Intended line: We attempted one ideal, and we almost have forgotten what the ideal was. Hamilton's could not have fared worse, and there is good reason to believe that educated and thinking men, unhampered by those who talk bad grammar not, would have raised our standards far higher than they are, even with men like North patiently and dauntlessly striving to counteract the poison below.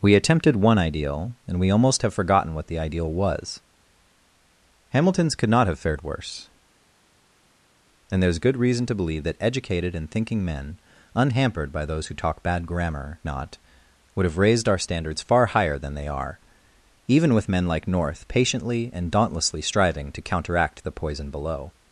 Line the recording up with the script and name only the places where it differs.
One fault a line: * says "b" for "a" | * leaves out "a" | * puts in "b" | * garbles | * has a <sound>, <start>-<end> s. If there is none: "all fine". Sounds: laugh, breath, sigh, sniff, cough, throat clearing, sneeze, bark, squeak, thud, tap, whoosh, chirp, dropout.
all fine